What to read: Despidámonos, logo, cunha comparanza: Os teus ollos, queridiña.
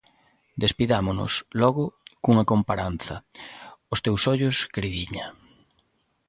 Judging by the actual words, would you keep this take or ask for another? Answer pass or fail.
pass